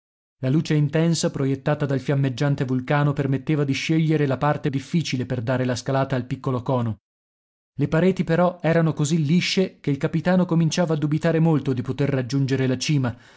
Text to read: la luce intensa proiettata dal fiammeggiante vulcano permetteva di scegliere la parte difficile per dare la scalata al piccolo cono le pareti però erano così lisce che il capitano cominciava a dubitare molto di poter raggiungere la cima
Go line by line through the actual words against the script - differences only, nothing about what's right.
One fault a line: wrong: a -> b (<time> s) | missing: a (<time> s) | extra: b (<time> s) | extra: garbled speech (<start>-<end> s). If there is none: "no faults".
no faults